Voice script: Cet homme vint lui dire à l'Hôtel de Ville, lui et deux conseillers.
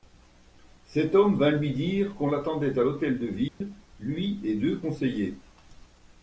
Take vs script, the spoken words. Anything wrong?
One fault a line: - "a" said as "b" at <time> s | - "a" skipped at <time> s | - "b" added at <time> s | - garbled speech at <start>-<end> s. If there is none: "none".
- "qu'on l'attendait" added at 2.1 s